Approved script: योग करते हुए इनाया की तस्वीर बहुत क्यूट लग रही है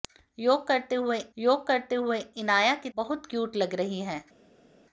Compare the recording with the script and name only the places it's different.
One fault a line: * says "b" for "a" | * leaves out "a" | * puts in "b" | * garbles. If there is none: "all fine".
* puts in "योग करते हुए"
* leaves out "तस्वीर"